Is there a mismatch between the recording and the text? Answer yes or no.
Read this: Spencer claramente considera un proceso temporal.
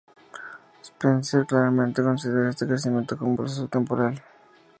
yes